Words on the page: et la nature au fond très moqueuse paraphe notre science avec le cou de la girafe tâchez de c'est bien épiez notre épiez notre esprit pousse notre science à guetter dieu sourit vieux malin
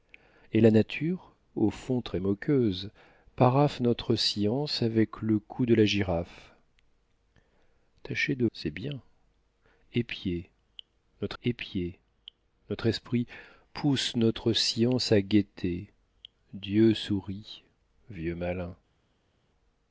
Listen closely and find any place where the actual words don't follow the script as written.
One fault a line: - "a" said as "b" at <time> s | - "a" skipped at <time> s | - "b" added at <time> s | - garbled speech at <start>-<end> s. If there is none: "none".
none